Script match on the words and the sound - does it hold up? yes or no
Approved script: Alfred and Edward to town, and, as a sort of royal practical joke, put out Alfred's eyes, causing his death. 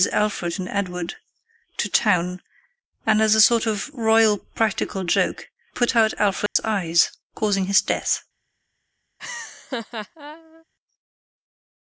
no